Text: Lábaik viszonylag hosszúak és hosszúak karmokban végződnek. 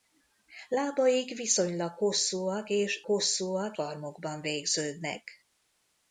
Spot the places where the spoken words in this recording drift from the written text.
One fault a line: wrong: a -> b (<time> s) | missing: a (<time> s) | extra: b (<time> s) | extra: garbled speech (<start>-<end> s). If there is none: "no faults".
no faults